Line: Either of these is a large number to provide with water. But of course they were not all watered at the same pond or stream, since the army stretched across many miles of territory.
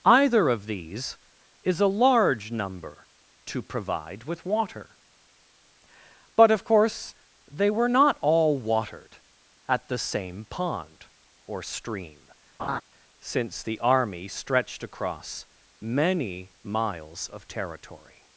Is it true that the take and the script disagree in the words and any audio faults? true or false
true